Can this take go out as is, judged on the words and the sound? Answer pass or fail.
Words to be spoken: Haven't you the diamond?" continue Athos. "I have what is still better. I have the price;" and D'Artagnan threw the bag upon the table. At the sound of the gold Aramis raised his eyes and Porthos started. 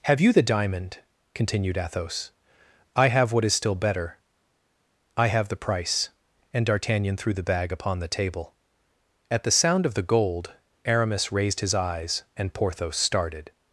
fail